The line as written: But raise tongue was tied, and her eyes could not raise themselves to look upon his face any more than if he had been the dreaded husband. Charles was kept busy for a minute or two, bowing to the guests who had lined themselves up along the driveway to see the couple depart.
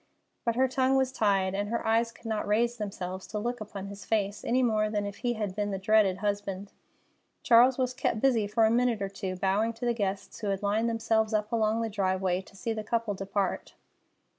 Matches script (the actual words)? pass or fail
fail